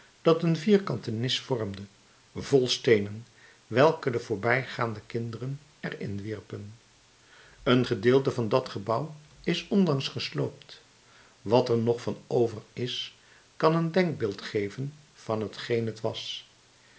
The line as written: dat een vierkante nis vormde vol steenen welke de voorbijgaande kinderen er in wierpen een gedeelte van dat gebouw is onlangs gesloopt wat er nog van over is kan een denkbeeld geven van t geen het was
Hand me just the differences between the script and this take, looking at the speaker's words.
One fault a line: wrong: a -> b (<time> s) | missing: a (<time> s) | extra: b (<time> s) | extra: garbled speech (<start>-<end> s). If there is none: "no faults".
no faults